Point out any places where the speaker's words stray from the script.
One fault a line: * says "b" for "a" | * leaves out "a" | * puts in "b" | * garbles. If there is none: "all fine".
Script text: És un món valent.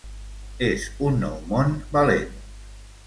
* puts in "nou"